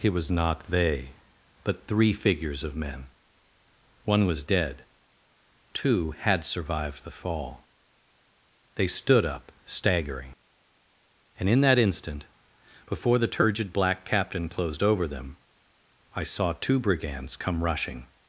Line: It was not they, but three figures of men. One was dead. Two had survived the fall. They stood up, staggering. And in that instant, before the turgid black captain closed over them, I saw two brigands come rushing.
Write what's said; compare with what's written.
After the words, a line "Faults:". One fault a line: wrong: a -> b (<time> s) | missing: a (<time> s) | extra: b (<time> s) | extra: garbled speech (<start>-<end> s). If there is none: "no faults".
It was not they, but three figures of men. One was dead. Two had survived the fall. They stood up, staggering. And in that instant, before the turgid black captain closed over them, I saw two brigands come rushing.
Faults:
no faults